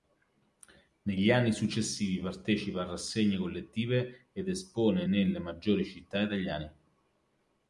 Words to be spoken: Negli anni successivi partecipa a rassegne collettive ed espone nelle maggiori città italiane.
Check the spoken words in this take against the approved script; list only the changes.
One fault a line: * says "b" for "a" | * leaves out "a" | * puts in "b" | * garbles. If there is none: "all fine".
all fine